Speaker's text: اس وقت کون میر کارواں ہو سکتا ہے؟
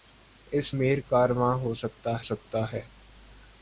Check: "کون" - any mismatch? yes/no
yes